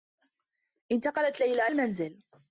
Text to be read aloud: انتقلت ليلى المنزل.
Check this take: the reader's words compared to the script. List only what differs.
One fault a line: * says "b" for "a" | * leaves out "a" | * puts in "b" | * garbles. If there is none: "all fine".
all fine